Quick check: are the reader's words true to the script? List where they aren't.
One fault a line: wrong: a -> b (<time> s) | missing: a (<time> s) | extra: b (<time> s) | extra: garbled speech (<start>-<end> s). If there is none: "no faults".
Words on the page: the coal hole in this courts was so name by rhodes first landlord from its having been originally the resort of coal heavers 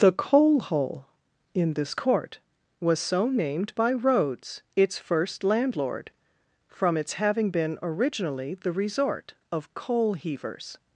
wrong: courts -> court (1.9 s)
wrong: name -> named (3.3 s)
extra: its (4.8 s)